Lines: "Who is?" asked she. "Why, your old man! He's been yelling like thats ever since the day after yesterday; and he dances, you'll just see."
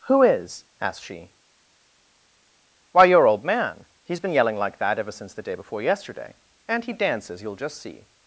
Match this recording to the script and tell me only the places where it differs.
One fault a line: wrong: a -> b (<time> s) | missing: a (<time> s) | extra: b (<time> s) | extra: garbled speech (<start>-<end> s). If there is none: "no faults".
wrong: thats -> that (4.8 s)
wrong: after -> before (5.5 s)